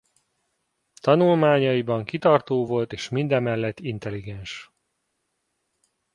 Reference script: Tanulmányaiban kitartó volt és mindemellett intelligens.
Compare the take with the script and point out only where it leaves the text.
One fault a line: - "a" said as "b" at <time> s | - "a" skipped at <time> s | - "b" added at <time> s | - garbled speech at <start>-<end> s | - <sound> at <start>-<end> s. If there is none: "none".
none